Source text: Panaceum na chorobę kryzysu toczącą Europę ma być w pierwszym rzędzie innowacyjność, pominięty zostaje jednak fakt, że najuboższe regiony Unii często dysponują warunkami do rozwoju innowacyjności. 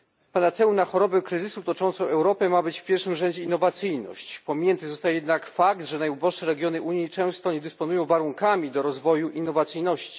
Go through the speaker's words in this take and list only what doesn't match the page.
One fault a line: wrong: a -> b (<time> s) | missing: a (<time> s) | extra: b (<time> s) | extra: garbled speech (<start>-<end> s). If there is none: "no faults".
extra: nie (7.5 s)